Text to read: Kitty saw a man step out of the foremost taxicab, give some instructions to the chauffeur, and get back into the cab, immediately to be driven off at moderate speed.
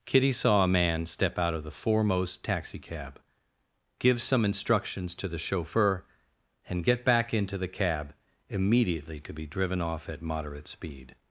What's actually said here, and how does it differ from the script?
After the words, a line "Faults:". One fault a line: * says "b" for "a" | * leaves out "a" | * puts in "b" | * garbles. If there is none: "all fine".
Kitty saw a man step out of the foremost taxicab, give some instructions to the chauffeur, and get back into the cab, immediately to be driven off at moderate speed.
Faults:
all fine